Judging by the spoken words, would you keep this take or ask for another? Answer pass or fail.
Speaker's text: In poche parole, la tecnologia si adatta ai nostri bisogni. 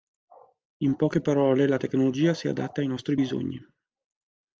pass